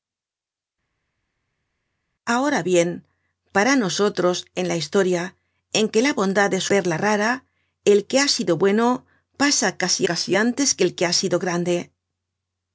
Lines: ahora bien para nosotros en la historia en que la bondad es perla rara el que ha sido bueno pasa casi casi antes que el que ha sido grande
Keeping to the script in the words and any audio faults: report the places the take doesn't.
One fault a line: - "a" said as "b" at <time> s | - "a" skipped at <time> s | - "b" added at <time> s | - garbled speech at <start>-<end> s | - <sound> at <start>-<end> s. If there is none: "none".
none